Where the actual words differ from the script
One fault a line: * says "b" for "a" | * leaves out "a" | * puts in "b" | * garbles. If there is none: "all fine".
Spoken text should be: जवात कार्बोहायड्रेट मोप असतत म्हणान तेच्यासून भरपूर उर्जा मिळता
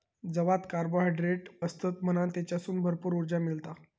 * leaves out "मोप"